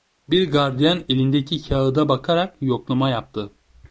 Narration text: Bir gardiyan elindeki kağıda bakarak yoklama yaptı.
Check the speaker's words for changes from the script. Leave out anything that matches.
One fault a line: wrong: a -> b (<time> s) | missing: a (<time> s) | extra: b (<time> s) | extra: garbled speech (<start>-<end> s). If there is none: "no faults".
no faults